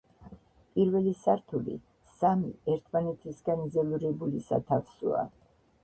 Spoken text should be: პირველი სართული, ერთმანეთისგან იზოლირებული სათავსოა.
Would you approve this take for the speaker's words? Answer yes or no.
no